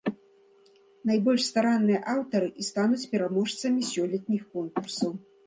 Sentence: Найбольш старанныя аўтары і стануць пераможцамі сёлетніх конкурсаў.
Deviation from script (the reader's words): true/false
false